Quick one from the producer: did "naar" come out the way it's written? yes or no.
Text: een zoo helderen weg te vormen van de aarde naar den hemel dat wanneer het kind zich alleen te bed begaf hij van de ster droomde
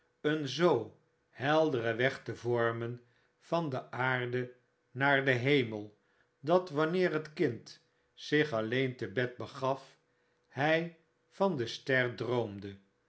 yes